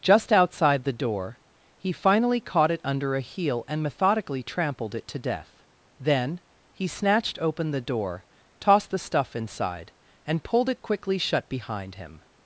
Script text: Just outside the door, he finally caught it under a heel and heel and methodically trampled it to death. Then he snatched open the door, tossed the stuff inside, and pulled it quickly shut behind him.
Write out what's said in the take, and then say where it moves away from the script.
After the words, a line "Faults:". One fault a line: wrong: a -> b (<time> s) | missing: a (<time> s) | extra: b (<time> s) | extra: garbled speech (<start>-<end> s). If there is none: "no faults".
Just outside the door, he finally caught it under a heel and methodically trampled it to death. Then he snatched open the door, tossed the stuff inside, and pulled it quickly shut behind him.
Faults:
missing: heel and (3.8 s)